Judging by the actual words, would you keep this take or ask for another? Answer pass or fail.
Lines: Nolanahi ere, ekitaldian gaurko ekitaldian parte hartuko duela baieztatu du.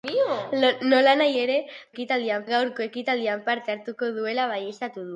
pass